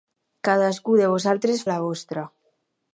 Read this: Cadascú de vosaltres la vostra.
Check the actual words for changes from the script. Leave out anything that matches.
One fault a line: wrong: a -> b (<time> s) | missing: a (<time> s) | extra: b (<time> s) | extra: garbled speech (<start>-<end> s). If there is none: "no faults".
no faults